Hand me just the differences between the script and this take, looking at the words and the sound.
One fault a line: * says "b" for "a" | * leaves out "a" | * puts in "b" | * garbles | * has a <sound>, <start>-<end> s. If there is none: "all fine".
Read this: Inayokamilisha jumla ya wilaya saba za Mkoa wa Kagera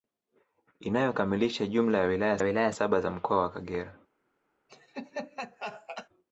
* puts in "wilaya"
* has a laugh, 4.7-6.1 s